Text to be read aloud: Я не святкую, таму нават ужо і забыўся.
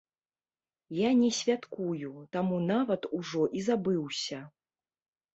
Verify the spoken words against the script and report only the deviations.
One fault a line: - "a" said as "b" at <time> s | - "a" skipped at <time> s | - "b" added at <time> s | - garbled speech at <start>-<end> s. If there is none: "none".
none